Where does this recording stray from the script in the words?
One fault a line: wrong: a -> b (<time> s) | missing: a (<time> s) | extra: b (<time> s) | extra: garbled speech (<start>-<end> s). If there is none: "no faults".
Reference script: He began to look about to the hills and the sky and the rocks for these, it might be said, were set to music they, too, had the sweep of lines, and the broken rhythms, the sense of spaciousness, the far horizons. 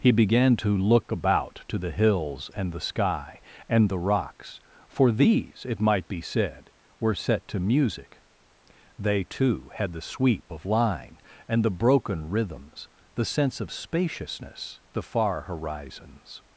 wrong: lines -> line (10.7 s)